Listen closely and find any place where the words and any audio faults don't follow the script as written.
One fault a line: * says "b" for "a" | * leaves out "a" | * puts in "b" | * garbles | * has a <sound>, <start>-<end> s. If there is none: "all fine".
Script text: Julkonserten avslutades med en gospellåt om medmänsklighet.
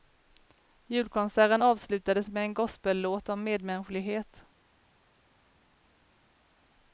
all fine